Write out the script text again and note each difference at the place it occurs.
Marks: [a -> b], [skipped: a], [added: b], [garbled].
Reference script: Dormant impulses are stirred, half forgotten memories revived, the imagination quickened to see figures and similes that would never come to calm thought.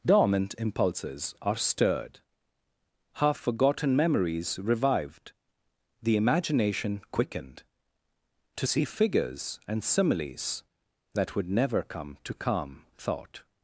Dormant impulses are stirred, half forgotten memories revived, the imagination quickened to see figures and similes that would never come to calm thought.